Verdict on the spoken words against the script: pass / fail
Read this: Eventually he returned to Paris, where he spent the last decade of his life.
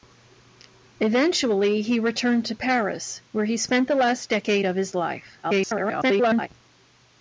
fail